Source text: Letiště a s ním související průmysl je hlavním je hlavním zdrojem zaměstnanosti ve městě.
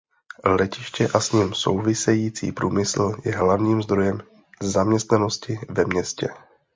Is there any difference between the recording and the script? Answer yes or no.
yes